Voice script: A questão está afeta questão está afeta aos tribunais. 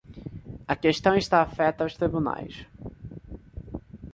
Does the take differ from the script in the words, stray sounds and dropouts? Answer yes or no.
yes